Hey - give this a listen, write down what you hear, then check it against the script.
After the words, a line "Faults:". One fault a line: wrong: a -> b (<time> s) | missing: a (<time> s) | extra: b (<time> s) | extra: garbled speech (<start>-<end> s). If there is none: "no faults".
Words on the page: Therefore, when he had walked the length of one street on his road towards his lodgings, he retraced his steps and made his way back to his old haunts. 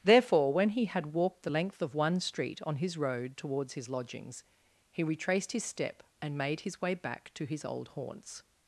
Therefore, when he had walked the length of one street on his road towards his lodgings, he retraced his step and made his way back to his old haunts.
Faults:
wrong: steps -> step (5.6 s)